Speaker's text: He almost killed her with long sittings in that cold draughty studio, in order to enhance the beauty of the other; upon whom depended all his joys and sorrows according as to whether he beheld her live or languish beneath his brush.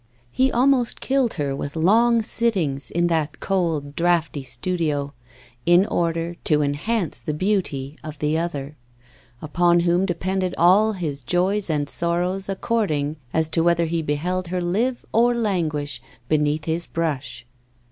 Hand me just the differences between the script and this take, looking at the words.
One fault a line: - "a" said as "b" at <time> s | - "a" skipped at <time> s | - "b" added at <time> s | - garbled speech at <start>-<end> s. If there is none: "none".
none